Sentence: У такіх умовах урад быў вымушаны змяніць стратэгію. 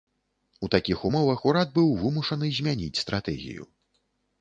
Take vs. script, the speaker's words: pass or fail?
pass